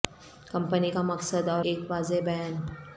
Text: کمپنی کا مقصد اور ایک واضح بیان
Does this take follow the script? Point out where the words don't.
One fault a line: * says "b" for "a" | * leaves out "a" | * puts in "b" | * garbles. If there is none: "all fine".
all fine